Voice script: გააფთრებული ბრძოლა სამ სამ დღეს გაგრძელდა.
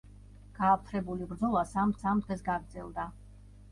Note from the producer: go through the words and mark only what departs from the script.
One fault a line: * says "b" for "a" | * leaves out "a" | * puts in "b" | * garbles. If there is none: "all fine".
all fine